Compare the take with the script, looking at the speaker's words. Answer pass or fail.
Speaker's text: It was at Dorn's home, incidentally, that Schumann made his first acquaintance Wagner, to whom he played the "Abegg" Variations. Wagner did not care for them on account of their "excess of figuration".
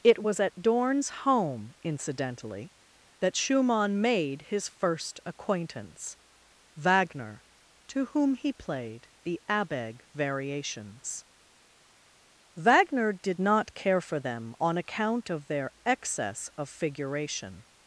pass